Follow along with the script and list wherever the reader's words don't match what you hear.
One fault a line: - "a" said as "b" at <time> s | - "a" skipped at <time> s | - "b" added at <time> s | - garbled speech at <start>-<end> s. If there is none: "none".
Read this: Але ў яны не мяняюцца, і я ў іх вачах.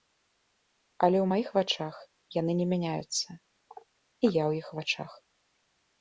- "маіх вачах" added at 1.3 s